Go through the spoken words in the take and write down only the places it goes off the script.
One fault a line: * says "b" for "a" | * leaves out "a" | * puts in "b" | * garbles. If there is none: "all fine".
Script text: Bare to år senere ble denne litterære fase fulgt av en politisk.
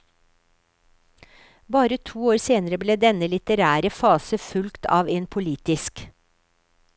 all fine